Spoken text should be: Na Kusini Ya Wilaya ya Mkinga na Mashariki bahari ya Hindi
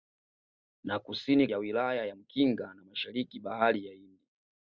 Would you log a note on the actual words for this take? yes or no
no